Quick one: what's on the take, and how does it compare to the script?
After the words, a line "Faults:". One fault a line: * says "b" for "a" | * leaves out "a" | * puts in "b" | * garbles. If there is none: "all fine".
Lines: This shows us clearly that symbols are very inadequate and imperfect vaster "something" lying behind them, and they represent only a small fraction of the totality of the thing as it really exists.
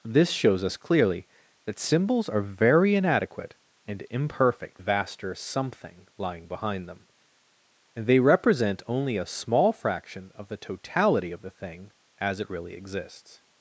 This shows us clearly that symbols are very inadequate and imperfect vaster "something" lying behind them, and they represent only a small fraction of the totality of the thing as it really exists.
Faults:
all fine